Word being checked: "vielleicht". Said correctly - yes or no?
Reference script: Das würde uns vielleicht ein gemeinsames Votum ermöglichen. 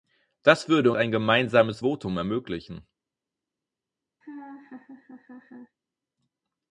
no